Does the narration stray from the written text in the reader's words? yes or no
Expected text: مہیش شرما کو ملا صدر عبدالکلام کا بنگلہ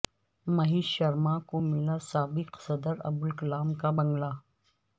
yes